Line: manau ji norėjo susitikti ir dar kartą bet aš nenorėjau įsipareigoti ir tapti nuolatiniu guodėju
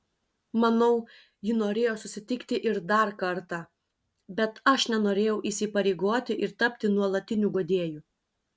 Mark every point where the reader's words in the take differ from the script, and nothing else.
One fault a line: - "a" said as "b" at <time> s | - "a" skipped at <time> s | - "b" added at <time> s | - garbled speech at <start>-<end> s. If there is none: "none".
none